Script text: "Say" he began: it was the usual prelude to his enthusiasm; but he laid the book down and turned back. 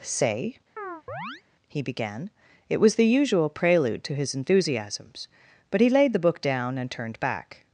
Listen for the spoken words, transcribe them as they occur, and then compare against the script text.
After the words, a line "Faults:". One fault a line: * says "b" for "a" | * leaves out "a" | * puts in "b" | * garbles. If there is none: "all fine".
"Say" he began: it was the usual prelude to his enthusiasms; but he laid the book down and turned back.
Faults:
* says "enthusiasms" for "enthusiasm"